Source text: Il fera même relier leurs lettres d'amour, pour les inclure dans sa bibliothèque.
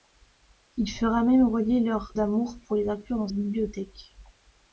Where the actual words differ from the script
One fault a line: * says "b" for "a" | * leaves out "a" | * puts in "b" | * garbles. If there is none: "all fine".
* leaves out "lettres"
* leaves out "sa"